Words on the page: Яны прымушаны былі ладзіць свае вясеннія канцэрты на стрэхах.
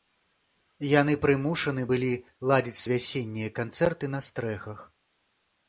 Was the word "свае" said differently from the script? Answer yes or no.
yes